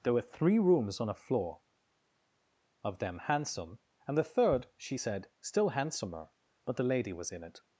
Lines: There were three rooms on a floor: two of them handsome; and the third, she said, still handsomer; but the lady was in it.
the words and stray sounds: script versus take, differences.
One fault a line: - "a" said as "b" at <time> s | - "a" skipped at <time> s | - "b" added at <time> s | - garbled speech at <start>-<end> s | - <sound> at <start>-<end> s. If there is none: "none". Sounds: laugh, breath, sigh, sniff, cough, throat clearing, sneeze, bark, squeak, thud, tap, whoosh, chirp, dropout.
- "two" skipped at 1.6 s